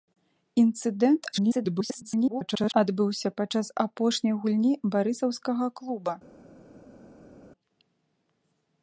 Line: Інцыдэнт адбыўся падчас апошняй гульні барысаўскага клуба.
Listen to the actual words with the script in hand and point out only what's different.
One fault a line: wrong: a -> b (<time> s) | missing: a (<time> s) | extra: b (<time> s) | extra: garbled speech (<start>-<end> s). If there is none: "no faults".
extra: garbled speech (1.3-2.7 s)